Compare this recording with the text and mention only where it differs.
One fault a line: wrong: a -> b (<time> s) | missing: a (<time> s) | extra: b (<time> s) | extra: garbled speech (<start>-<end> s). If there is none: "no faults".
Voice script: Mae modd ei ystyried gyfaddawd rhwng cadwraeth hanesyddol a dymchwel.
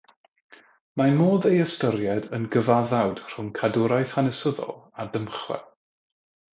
extra: yn (2.4 s)